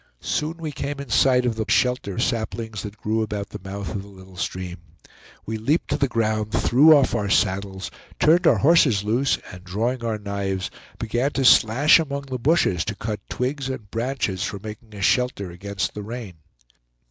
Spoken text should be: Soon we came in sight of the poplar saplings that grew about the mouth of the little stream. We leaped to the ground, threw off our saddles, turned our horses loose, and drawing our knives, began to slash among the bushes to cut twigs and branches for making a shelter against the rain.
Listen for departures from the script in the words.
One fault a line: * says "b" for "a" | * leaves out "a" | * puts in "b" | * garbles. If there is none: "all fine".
* says "shelter" for "poplar"